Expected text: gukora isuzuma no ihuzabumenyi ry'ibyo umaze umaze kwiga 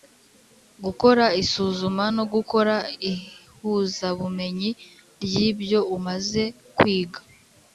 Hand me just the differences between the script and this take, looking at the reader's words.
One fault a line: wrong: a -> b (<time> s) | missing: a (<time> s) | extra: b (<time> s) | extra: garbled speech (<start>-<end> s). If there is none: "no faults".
extra: gukora (2.3 s)
missing: umaze (6.4 s)